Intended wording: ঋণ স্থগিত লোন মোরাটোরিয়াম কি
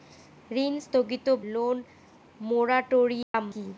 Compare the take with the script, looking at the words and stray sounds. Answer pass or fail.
fail